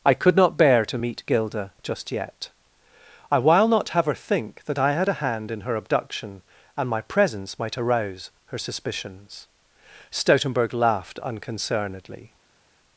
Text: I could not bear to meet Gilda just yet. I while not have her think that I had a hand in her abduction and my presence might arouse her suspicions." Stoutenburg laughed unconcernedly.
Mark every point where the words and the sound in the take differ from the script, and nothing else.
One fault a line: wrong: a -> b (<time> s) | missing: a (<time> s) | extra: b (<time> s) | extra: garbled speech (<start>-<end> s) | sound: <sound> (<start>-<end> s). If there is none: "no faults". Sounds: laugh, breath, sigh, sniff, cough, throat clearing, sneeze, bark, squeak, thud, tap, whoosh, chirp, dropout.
no faults